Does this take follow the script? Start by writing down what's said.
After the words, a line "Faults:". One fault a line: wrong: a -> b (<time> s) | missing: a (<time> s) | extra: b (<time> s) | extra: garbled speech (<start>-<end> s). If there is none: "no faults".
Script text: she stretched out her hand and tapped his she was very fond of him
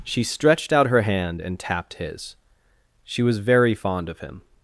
she stretched out her hand and tapped his she was very fond of him
Faults:
no faults